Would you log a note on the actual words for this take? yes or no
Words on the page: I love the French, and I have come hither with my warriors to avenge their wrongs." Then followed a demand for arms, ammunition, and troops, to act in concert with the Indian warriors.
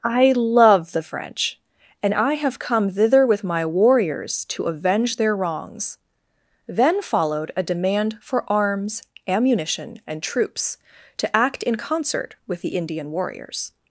yes